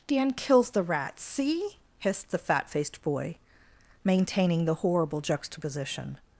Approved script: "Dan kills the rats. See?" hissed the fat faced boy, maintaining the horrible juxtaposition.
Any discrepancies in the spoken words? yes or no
no